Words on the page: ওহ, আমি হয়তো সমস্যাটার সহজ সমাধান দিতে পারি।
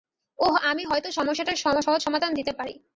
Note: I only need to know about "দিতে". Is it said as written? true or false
true